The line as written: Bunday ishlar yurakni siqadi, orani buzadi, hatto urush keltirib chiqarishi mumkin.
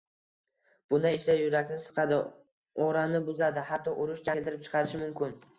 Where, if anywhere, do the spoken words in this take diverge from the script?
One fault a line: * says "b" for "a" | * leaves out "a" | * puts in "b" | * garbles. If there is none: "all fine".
all fine